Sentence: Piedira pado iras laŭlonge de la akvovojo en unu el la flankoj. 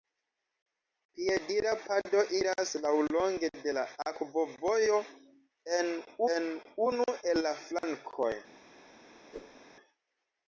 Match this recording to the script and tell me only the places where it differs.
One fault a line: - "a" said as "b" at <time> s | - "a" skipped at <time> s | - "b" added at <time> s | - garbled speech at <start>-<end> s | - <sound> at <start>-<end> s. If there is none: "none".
- "en" added at 6.4 s
- dropout at 7.8-7.8 s
- whoosh at 9.3-9.6 s